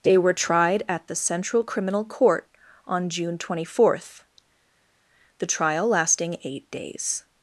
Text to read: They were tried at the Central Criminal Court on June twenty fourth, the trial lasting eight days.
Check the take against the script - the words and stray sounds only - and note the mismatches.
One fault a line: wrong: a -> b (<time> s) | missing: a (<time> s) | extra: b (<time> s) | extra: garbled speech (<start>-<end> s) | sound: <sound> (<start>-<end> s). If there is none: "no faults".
no faults